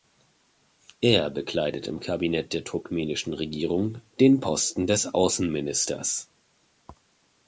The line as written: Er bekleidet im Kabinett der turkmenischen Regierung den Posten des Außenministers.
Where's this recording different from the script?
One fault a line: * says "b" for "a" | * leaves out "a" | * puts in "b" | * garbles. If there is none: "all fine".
all fine